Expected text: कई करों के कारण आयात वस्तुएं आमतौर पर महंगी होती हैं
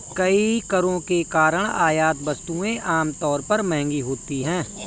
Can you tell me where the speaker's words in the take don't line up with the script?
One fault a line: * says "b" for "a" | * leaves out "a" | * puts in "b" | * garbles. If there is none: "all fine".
all fine